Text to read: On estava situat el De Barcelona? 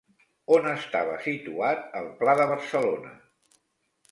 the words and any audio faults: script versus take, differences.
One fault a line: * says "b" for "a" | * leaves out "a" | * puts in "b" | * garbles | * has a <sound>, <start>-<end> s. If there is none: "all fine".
* puts in "Pla"